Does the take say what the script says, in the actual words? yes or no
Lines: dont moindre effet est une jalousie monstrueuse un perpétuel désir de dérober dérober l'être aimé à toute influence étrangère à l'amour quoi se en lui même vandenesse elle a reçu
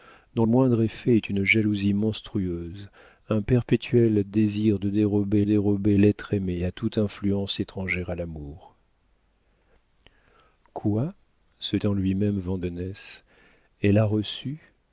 yes